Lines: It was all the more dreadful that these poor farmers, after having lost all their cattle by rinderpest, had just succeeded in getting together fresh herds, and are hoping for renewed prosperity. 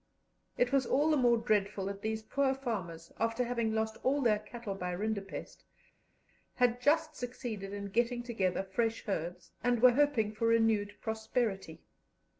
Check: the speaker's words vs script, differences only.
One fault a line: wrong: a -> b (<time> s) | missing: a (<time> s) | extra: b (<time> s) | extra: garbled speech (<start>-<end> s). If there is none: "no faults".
wrong: are -> were (9.8 s)